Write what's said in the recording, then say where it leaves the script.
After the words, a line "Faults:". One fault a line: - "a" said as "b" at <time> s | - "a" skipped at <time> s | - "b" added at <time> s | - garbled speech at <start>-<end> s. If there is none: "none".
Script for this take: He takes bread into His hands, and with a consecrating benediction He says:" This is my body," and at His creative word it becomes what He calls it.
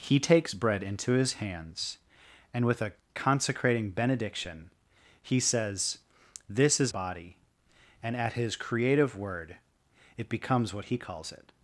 He takes bread into His hands, and with a consecrating benediction He says:" This is body," and at His creative word it becomes what He calls it.
Faults:
- "my" skipped at 6.9 s